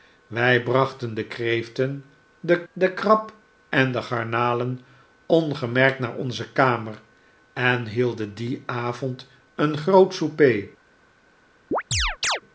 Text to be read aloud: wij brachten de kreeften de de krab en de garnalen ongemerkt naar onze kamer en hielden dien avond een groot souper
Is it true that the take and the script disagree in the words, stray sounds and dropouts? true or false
true